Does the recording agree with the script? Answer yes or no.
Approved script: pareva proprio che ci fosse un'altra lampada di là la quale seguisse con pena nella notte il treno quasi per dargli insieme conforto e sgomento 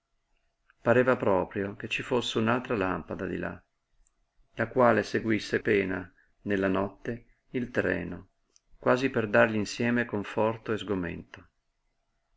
no